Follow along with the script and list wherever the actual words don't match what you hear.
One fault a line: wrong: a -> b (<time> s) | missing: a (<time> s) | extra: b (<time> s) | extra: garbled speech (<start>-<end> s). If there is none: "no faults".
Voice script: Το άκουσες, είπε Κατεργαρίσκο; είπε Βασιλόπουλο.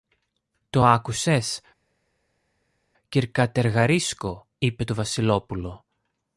wrong: είπε -> κυρ (3.1 s)
extra: το (4.8 s)